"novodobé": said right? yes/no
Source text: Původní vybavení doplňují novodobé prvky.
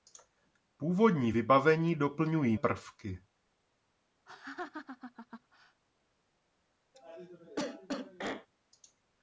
no